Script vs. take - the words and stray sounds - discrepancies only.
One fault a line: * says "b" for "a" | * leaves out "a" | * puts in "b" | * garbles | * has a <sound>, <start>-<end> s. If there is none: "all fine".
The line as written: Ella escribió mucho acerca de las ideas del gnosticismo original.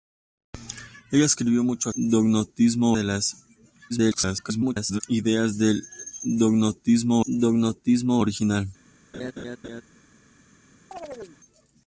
* says "gnosticismo" for "acerca"
* garbles
* puts in "gnosticismo"
* has a laugh, 9.1-9.8 s
* has a chirp, 10.9-11.4 s